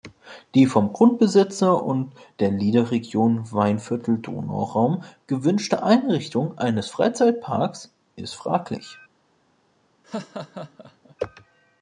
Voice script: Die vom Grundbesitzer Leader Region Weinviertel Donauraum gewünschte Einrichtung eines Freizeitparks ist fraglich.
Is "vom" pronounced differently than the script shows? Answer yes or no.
no